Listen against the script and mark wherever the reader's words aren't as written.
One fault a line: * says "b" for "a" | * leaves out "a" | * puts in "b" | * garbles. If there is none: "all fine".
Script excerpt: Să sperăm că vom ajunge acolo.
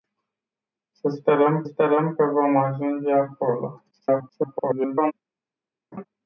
* puts in "sperăm"
* garbles